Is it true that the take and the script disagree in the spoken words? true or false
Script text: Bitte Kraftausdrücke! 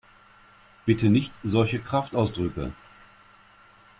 true